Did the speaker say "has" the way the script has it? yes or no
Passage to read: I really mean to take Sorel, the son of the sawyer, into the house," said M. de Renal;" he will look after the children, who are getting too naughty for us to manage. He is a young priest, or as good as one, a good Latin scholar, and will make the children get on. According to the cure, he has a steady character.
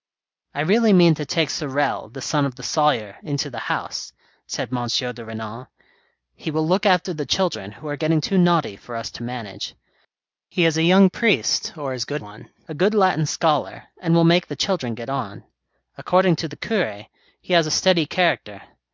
yes